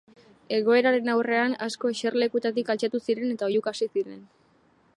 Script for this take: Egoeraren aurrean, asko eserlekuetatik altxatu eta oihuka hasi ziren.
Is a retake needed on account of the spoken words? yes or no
yes